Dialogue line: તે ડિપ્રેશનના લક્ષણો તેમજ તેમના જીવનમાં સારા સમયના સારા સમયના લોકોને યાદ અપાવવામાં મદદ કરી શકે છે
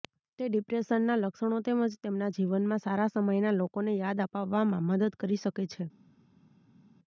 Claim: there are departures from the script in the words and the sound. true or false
true